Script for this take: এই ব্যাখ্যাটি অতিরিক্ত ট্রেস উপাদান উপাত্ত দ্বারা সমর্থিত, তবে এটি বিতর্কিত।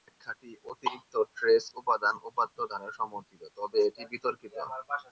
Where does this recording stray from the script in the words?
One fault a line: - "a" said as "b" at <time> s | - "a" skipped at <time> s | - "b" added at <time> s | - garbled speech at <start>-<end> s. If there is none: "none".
none